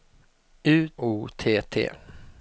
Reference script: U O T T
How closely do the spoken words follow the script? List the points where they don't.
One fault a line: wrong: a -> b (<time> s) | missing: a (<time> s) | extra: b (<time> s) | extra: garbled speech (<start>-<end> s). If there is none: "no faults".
no faults